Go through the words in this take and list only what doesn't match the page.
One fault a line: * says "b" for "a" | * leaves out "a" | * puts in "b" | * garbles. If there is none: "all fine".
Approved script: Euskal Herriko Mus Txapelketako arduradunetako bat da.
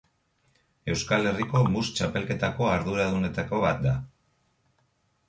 all fine